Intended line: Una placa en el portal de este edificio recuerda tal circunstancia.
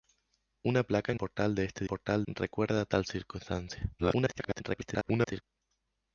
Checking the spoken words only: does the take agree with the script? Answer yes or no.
no